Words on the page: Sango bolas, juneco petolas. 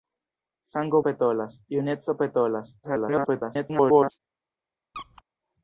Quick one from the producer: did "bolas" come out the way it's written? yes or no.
no